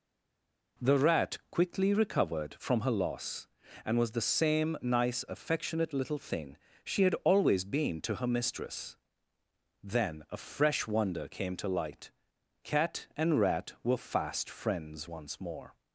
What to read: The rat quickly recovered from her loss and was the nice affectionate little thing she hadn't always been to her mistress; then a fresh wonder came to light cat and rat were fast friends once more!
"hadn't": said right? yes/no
no